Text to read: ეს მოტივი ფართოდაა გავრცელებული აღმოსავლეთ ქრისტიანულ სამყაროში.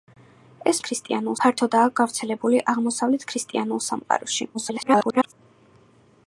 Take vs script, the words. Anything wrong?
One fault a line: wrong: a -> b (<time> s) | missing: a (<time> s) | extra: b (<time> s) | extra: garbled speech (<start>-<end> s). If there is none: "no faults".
wrong: მოტივი -> ქრისტიანულ (0.9 s)
extra: garbled speech (4.5-5.3 s)